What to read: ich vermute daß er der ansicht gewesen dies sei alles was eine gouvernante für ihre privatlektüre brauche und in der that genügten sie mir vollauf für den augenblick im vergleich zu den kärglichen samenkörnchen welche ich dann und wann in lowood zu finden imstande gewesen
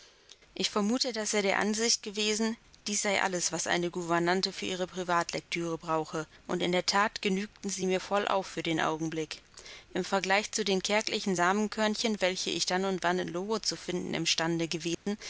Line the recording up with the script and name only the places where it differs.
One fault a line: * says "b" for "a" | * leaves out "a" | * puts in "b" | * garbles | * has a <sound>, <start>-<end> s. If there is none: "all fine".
* has a dropout, 14.9-15.1 s